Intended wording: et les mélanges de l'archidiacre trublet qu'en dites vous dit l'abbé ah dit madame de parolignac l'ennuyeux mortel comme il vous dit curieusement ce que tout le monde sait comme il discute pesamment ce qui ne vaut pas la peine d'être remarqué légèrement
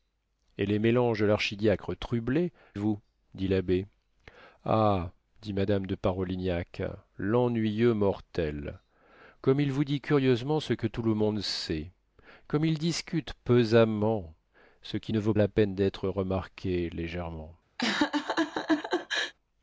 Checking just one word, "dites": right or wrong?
wrong